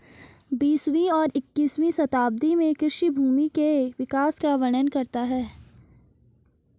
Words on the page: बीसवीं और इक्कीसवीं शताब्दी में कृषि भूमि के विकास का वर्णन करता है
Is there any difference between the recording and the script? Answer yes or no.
no